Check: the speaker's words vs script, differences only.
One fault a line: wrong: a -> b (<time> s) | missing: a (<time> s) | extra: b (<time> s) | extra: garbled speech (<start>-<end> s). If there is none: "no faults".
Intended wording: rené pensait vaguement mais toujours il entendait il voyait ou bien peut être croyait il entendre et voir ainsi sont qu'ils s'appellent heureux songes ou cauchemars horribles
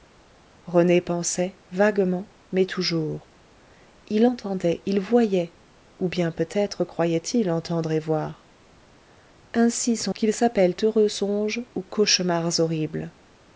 no faults